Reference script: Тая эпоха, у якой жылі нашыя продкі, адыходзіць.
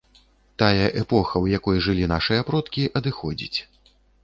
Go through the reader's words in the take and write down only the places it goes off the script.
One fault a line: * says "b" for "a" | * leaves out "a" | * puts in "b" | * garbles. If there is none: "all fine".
all fine